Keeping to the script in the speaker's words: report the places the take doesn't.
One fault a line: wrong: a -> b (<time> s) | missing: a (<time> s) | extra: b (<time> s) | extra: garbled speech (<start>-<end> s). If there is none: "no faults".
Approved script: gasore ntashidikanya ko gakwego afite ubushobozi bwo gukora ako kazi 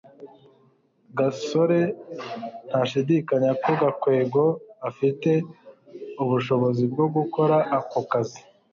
no faults